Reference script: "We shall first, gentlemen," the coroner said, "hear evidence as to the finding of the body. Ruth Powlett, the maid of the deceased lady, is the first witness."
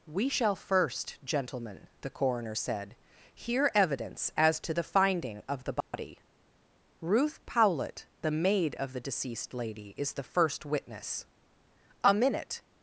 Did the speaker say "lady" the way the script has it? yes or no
yes